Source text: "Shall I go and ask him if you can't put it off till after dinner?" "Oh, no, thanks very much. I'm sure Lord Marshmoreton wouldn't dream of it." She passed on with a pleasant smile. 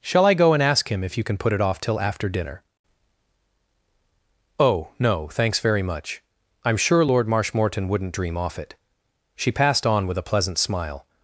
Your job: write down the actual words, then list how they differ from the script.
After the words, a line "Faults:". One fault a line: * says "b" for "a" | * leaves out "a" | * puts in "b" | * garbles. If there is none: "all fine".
"Shall I go and ask him if you can put it off till after dinner?" "Oh, no, thanks very much. I'm sure Lord Marshmoreton wouldn't dream off it." She passed on with a pleasant smile.
Faults:
* says "can" for "can't"
* says "off" for "of"